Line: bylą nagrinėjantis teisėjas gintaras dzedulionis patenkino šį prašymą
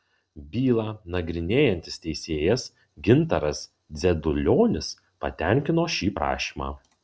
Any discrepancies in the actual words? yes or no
no